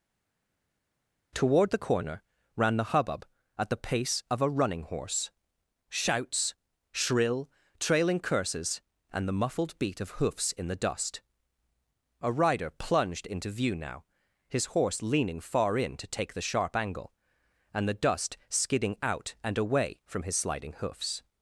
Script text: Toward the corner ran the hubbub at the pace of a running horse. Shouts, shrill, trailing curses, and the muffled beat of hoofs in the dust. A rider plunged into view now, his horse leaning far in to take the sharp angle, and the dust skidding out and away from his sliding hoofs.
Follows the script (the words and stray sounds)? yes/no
yes